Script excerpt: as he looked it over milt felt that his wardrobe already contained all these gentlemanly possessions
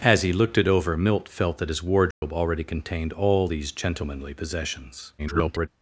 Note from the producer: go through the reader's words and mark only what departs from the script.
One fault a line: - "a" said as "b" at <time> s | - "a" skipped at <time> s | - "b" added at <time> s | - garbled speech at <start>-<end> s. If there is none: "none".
- garbled speech at 5.2-5.7 s